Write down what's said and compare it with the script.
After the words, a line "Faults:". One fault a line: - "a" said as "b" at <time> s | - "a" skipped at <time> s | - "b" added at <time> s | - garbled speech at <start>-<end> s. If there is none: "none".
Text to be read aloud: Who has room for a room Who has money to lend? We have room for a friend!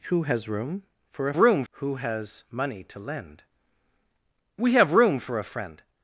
Who has room for a room Who has money to lend? We have room for a friend!
Faults:
none